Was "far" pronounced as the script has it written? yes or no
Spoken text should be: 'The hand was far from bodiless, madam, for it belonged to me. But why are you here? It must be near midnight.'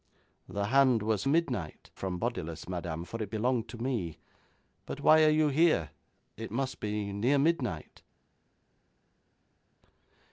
no